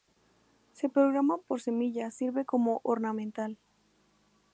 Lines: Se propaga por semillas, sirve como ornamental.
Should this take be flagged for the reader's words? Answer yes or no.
no